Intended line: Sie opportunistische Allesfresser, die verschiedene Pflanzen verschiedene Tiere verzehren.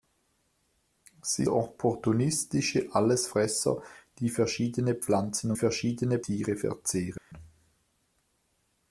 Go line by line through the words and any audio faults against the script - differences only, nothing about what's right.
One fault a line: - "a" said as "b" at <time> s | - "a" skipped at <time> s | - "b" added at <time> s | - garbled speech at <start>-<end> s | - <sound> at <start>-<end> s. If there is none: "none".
- dropout at 7.2-7.3 s